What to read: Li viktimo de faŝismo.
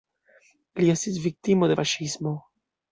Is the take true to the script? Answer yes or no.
no